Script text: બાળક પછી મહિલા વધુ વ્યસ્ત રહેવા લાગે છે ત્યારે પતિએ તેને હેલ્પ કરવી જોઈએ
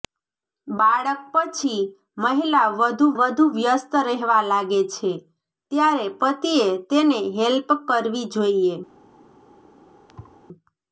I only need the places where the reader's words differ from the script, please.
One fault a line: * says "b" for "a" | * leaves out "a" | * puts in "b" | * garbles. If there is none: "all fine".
* puts in "વધુ"